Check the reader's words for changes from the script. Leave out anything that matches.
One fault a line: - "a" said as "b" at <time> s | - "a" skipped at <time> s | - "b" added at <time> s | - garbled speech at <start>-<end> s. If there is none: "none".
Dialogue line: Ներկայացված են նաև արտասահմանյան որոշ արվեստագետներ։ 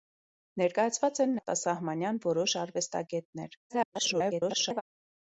- "նաև" skipped at 1.4 s
- garbled speech at 3.7-4.8 s